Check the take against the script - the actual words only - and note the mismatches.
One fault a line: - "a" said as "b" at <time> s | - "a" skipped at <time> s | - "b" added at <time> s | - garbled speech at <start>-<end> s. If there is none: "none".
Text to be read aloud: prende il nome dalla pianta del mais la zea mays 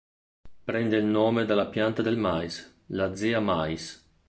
none